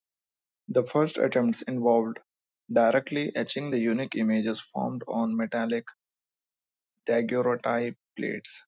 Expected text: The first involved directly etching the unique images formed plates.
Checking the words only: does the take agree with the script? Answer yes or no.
no